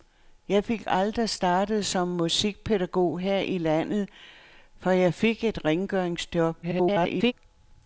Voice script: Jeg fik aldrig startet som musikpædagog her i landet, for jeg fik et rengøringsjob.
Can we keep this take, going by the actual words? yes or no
no